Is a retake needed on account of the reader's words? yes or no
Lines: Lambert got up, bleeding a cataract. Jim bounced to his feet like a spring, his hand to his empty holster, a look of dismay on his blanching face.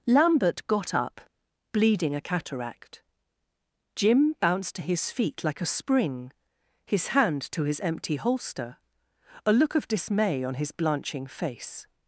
no